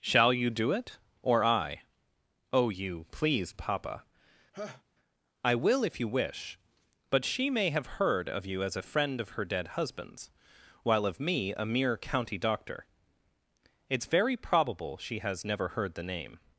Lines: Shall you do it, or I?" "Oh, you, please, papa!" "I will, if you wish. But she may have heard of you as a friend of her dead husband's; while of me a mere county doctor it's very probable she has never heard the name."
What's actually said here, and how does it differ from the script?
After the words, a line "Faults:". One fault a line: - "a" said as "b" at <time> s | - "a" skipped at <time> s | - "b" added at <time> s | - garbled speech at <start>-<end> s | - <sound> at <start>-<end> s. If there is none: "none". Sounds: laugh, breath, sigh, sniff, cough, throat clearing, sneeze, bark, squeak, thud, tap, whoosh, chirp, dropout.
Shall you do it, or I?" "Oh, you, please, papa!" "I will, if you wish. But she may have heard of you as a friend of her dead husband's; while of me a mere county doctor it's very probable she has never heard the name."
Faults:
- laugh at 4.5-4.8 s